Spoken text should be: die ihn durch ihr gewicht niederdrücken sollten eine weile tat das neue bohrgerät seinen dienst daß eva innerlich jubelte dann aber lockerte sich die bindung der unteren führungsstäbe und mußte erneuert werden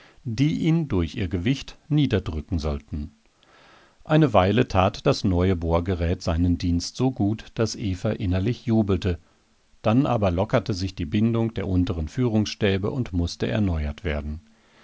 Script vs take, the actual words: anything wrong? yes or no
yes